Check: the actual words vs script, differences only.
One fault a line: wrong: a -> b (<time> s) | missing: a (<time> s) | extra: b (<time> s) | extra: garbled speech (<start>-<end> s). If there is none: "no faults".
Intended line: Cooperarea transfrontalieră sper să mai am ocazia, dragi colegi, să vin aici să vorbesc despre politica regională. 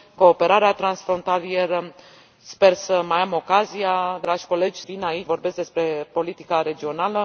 missing: să (4.8 s)
missing: să (5.3 s)